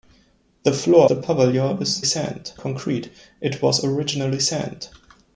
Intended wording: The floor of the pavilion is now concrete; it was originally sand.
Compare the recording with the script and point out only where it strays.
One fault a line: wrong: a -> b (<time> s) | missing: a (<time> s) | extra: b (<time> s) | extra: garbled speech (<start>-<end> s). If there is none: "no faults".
missing: of (1.1 s)
wrong: now -> sand (2.0 s)